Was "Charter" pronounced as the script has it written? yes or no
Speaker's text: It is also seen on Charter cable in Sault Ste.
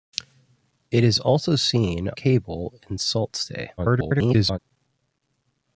no